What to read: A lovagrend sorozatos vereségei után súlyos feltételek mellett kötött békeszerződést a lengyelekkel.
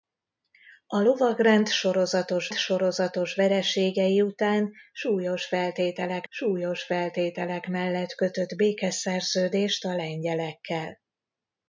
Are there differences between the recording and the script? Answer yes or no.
yes